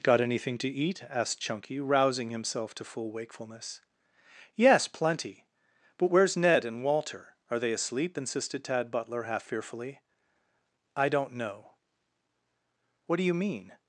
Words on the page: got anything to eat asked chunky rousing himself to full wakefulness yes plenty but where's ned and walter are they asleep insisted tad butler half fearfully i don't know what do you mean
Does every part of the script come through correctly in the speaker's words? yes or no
yes